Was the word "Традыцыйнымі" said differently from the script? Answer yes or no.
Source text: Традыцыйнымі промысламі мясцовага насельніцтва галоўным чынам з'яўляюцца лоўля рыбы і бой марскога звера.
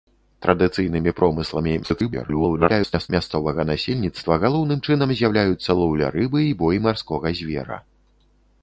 no